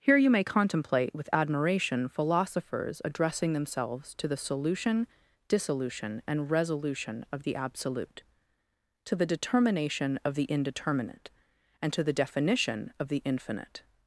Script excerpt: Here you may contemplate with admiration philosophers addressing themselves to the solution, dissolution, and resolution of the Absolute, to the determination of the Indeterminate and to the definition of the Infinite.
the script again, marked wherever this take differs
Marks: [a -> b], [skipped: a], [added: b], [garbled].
Here you may contemplate with admiration philosophers addressing themselves to the solution, dissolution, and resolution of the Absolute, to the determination of the Indeterminate and to the definition of the Infinite.